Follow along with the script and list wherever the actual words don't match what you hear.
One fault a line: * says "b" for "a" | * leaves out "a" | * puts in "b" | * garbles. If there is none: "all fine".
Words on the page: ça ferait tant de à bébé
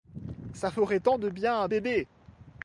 * puts in "bien"